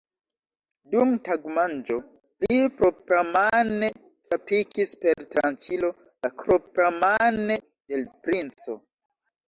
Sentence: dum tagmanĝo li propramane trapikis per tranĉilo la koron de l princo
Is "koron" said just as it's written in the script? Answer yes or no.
no